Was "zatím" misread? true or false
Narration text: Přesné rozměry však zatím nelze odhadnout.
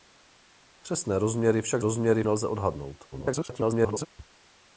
true